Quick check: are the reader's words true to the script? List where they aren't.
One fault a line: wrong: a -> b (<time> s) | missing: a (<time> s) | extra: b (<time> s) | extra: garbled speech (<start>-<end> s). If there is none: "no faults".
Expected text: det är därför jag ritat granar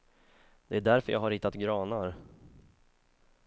extra: har (1.2 s)